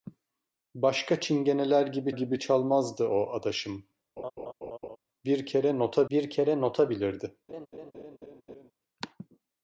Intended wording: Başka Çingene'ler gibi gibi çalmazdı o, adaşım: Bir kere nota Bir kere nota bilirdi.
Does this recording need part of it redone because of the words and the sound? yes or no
yes